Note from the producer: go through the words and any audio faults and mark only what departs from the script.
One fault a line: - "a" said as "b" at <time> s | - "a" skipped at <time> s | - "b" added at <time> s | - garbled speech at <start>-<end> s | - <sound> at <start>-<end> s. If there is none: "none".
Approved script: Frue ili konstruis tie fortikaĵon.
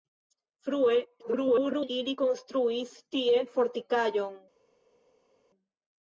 - garbled speech at 1.2-1.9 s